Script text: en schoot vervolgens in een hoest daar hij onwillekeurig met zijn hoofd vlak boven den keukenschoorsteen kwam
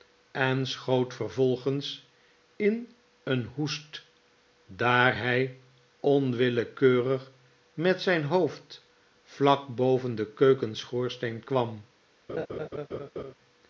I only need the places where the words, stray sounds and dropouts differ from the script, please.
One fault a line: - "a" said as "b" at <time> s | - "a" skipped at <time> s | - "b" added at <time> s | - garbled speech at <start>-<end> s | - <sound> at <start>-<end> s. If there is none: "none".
- laugh at 12.3-13.3 s